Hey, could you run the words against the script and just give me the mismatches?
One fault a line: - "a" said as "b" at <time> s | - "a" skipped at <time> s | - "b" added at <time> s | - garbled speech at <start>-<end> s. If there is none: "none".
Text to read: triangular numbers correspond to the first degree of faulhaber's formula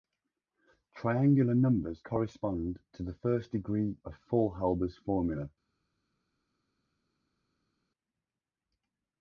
none